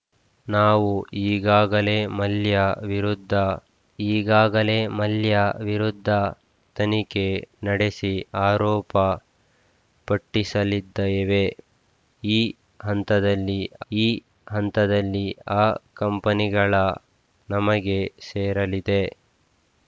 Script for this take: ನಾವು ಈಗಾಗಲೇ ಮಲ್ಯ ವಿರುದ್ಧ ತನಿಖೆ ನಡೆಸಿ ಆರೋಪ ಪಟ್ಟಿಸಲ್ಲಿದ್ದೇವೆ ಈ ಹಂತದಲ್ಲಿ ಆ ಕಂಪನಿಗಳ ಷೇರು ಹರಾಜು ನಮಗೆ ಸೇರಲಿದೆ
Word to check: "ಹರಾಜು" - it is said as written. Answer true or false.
false